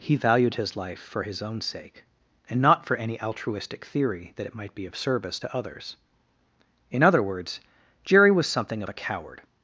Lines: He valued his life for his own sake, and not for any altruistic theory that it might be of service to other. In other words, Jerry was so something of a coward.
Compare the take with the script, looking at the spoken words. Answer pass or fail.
fail